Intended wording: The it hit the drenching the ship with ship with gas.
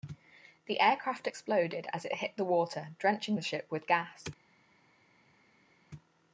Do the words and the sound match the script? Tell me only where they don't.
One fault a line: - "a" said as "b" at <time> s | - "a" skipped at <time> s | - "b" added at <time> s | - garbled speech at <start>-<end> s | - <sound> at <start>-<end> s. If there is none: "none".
- "aircraft exploded as" added at 0.8 s
- "water" added at 2.5 s
- "ship with" skipped at 3.9 s